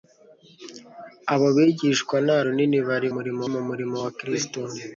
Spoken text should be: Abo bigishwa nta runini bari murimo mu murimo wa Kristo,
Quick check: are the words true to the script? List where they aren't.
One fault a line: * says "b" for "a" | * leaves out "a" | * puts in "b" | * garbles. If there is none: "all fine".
all fine